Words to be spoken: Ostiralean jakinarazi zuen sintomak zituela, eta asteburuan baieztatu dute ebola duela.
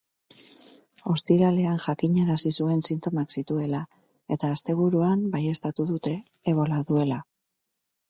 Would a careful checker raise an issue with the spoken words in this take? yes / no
no